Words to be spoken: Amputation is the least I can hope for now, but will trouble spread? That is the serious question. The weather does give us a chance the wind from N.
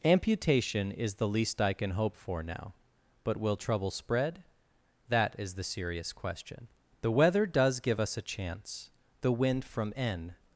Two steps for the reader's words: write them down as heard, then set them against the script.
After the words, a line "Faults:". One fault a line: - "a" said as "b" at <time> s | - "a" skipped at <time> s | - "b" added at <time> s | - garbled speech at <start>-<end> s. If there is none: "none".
Amputation is the least I can hope for now, but will trouble spread? That is the serious question. The weather does give us a chance the wind from N.
Faults:
none